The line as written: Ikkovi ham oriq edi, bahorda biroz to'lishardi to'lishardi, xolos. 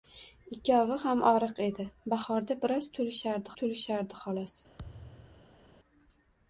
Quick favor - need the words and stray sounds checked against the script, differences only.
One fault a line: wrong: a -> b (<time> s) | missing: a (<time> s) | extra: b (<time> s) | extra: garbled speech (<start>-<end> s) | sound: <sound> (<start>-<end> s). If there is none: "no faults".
sound: thud (4.8-5.6 s)